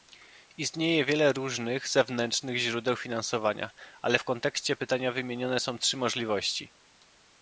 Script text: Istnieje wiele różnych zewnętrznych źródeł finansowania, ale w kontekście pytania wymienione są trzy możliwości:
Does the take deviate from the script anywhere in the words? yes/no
no